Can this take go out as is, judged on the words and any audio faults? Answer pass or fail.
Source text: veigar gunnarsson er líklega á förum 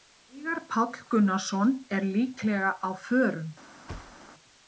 fail